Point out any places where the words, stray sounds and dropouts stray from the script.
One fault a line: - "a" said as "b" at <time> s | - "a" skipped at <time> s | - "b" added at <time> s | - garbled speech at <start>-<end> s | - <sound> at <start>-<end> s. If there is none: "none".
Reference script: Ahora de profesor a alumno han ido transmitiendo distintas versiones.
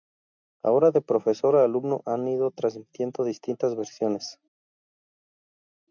none